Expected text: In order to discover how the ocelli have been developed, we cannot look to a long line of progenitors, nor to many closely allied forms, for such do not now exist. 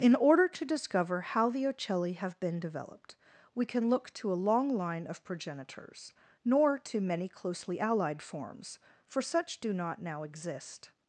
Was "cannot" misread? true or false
true